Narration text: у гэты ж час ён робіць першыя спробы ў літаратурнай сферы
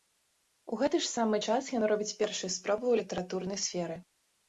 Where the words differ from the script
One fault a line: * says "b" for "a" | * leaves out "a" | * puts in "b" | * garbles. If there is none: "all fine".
* puts in "самы"